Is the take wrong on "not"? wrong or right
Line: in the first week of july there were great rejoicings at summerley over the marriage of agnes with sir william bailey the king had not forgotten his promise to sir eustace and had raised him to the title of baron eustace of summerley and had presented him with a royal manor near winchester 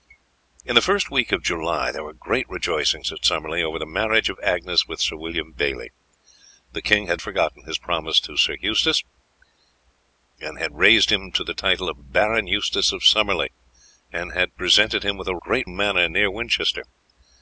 wrong